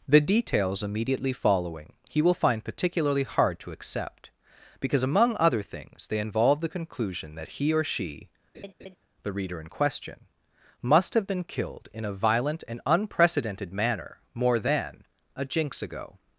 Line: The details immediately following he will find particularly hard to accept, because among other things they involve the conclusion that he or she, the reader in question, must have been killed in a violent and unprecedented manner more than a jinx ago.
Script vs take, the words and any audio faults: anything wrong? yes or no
yes